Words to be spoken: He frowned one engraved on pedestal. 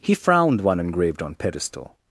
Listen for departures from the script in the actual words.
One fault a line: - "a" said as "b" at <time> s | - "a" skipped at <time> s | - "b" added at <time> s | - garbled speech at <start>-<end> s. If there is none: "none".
none